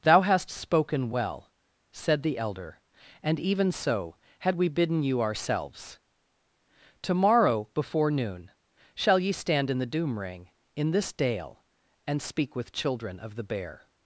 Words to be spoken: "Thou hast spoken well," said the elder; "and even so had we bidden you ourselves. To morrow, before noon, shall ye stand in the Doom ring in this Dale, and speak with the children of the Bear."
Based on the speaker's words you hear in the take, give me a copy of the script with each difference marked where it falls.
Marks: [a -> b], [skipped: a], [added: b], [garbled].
"Thou hast spoken well," said the elder; "and even so had we bidden you ourselves. To morrow, before noon, shall ye stand in the Doom ring in this Dale, and speak with [skipped: the] children of the Bear."